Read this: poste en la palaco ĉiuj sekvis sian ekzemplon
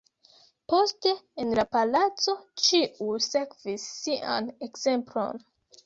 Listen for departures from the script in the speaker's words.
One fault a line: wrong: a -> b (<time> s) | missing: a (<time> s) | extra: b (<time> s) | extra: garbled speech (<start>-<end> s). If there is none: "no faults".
no faults